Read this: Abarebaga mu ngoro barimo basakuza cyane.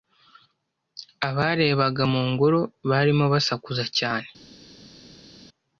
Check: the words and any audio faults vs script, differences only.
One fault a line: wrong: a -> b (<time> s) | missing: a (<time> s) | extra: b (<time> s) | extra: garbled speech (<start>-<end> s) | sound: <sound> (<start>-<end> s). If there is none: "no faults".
no faults